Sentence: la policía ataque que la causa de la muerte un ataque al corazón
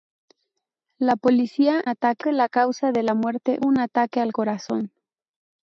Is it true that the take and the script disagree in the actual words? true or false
false